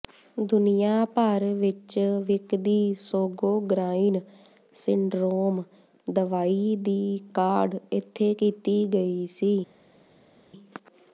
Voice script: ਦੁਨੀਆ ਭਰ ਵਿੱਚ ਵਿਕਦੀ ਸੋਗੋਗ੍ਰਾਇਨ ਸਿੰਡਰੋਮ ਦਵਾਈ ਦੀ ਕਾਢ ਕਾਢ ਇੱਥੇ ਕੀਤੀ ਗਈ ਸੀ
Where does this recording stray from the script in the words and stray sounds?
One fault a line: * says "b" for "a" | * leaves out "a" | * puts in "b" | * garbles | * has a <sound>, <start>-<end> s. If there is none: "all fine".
* leaves out "ਕਾਢ"